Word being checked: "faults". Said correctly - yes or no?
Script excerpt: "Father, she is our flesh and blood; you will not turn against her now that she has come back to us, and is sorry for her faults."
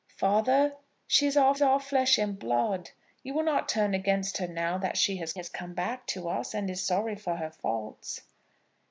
yes